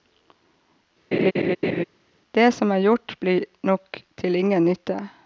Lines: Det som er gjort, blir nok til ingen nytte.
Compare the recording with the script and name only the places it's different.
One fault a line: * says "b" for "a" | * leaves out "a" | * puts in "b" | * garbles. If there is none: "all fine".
all fine